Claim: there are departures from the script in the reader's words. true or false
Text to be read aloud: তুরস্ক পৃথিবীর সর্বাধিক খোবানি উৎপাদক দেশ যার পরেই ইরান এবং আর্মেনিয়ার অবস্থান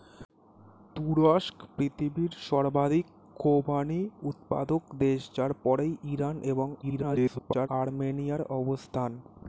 true